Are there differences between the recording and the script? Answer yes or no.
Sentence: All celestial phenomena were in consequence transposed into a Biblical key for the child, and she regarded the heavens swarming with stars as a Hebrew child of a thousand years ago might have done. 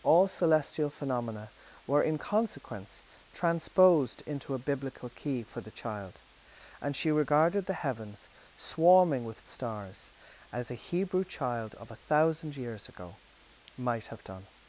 no